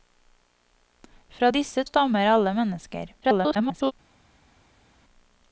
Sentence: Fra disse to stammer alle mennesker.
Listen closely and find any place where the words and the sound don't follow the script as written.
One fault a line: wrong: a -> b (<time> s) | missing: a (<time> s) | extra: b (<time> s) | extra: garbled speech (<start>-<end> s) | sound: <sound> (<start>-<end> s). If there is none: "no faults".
missing: to (1.8 s)
extra: garbled speech (3.2-3.9 s)